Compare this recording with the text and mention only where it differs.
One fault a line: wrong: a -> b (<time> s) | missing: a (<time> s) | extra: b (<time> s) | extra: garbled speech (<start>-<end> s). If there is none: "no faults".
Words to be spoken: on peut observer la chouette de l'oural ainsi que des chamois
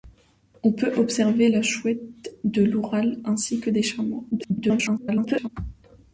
extra: garbled speech (4.3-5.5 s)